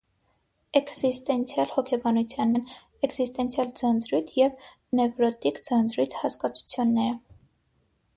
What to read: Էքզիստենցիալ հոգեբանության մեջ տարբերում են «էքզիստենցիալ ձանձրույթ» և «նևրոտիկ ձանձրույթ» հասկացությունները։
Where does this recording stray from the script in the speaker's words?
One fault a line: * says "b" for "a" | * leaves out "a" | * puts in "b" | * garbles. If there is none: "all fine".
* leaves out "մեջ տարբերում"